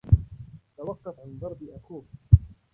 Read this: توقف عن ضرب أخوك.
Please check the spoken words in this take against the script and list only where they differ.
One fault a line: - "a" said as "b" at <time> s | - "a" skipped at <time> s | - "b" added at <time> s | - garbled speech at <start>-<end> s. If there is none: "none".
none